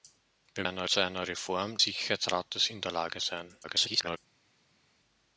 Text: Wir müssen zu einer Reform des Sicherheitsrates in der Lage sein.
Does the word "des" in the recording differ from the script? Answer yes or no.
yes